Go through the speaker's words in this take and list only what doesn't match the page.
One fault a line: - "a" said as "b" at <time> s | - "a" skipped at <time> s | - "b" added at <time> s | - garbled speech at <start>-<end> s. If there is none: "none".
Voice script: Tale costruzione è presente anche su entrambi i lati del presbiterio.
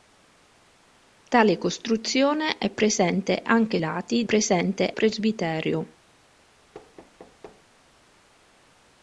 - "su entrambi" skipped at 3.8 s
- "del" said as "presente" at 4.2 s